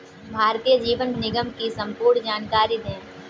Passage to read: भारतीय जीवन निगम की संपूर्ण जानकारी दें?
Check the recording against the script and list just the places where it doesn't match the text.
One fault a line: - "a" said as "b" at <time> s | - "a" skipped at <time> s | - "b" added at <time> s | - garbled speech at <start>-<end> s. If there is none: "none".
none